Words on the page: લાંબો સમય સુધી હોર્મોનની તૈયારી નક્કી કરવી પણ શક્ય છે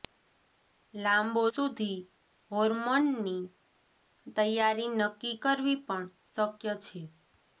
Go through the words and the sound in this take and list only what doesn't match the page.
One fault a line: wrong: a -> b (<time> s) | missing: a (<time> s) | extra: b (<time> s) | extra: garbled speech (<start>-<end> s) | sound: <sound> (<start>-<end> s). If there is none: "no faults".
missing: સમય (1.4 s)